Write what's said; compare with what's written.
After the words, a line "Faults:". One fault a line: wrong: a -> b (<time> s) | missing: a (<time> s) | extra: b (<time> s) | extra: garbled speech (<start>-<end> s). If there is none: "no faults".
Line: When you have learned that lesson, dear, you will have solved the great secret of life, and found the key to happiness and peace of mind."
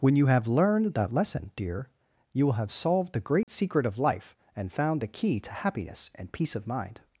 When you have learned that lesson, dear, you will have solved the great secret of life, and found the key to happiness and peace of mind."
Faults:
no faults